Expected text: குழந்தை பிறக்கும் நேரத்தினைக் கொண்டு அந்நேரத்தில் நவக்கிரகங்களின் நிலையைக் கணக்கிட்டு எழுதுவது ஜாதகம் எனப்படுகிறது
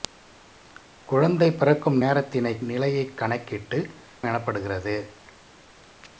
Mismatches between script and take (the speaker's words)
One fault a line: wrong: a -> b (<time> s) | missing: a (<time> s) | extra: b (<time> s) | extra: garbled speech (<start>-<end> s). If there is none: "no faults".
missing: கொண்டு அந்நேரத்தில் நவக்கிரகங்களின் (2.6 s)
missing: எழுதுவது ஜாதகம் (3.8 s)